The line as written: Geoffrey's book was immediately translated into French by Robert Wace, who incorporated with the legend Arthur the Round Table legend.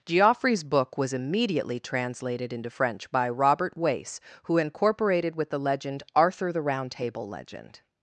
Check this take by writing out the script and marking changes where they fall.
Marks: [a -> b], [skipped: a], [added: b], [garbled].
Geoffrey's book was immediately translated into French by Robert Wace, who incorporated with the legend Arthur the Round Table legend.